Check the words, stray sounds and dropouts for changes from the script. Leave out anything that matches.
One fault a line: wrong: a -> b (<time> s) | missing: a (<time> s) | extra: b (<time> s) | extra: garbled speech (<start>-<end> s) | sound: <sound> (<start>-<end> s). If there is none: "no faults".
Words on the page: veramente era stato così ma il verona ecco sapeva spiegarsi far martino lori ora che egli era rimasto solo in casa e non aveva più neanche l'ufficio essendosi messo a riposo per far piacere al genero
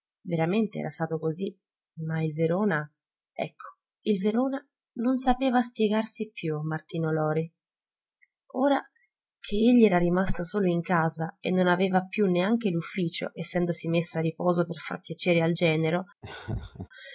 extra: il verona non (4.0 s)
wrong: far -> più (6.3 s)
sound: laugh (16.2-16.9 s)